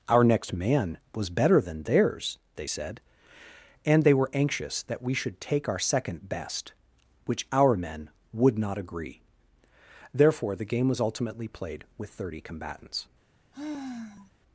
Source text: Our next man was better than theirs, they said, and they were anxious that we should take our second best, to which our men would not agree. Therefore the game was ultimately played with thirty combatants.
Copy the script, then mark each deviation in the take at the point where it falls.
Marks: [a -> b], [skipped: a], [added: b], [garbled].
Our next man was better than theirs, they said, and they were anxious that we should take our second best, [skipped: to] which our men would not agree. Therefore the game was ultimately played with thirty combatants.